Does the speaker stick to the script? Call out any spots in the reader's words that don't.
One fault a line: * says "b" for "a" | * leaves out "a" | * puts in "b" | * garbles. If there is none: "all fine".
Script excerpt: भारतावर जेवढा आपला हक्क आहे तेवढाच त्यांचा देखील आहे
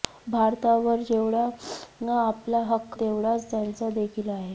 * leaves out "आहे"